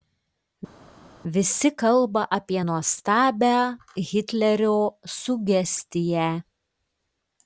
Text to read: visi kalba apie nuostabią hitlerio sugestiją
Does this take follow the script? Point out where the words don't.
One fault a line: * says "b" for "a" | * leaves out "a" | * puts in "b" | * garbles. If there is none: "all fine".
all fine